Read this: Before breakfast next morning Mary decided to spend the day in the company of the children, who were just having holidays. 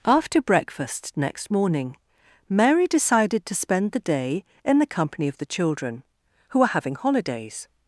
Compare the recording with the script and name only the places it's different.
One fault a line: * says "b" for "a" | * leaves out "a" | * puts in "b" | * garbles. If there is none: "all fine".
* says "After" for "Before"
* leaves out "just"